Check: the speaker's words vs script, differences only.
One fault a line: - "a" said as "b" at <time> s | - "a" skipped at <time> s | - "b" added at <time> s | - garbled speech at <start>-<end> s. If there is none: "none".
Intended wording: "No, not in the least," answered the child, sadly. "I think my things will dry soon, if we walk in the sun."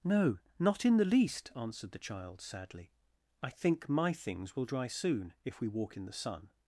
none